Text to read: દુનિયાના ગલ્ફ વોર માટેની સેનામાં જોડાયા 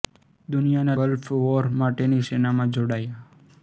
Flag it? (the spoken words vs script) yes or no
no